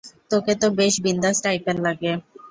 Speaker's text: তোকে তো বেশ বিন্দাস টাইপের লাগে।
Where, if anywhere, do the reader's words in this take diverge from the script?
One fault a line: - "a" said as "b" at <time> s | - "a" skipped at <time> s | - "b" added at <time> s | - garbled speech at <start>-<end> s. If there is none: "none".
none